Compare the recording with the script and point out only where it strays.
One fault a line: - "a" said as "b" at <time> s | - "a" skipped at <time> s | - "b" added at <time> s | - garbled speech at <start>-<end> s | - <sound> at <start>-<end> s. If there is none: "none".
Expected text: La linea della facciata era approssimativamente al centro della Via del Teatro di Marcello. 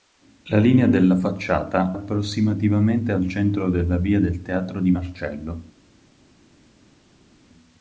- "era" skipped at 1.9 s